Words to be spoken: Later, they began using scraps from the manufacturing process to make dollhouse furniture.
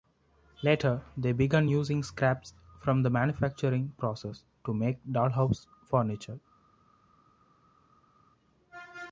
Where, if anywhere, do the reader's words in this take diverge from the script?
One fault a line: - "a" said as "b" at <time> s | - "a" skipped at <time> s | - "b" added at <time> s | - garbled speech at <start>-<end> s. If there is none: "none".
none